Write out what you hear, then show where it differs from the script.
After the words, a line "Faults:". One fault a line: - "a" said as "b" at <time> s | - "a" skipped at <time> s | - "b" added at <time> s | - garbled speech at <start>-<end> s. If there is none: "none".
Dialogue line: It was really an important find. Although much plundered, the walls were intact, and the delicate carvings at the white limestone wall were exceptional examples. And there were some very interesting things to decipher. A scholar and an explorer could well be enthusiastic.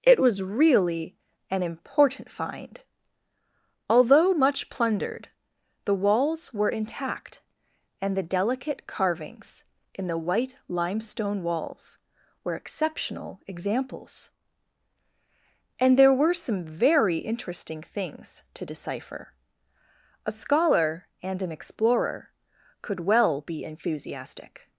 It was really an important find. Although much plundered, the walls were intact, and the delicate carvings in the white limestone walls were exceptional examples. And there were some very interesting things to decipher. A scholar and an explorer could well be enthusiastic.
Faults:
- "at" said as "in" at 9.9 s
- "wall" said as "walls" at 11.4 s